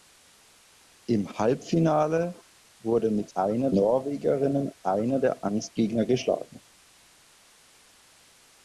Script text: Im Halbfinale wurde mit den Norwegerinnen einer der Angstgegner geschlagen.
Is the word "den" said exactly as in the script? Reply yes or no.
no